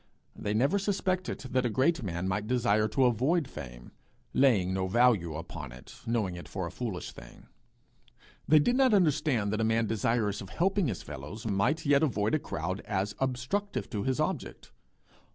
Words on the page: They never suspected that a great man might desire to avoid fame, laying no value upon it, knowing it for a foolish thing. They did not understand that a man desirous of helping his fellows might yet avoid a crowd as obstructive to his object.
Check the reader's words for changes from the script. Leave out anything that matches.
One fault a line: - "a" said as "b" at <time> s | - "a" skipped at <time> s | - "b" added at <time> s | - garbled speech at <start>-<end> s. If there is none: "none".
none